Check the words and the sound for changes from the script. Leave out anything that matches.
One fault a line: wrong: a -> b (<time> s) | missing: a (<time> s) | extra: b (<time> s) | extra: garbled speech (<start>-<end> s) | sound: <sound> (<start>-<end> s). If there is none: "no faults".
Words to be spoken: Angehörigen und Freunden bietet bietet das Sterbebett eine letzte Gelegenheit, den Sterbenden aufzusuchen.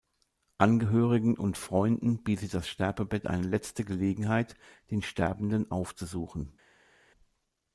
missing: bietet (2.5 s)